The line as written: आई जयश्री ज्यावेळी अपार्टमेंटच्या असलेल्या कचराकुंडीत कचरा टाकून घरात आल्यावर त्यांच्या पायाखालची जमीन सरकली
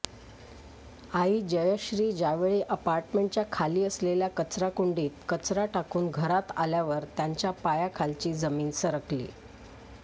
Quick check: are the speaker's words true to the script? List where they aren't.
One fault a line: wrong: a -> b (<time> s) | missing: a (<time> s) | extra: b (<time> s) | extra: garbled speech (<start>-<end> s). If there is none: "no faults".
extra: खाली (3.5 s)